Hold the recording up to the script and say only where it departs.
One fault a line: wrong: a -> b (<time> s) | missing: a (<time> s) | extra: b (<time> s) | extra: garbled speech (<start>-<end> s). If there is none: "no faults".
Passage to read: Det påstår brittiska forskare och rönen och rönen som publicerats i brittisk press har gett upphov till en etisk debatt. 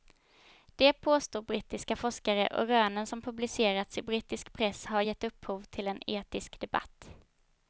missing: och rönen (3.1 s)